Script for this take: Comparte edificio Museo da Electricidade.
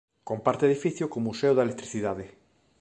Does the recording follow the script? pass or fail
fail